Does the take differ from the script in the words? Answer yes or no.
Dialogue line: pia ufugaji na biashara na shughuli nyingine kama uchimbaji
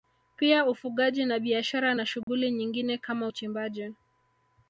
no